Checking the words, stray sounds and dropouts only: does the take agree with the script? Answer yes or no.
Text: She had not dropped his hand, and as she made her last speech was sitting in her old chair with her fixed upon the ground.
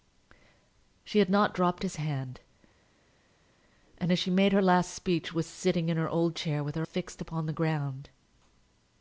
yes